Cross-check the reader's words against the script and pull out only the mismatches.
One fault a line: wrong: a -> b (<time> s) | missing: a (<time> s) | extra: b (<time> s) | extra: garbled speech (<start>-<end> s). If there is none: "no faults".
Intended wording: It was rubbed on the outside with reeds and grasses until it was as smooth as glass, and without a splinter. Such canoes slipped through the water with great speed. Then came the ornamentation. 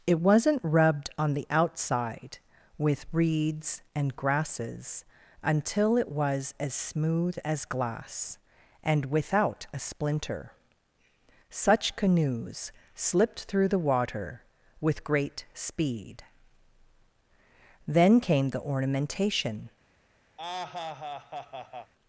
wrong: was -> wasn't (0.2 s)